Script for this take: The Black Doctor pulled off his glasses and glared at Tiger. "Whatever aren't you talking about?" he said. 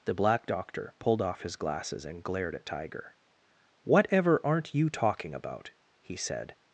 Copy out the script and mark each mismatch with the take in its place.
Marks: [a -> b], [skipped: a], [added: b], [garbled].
The Black Doctor pulled off his glasses and glared at Tiger. "Whatever aren't you talking about?" he said.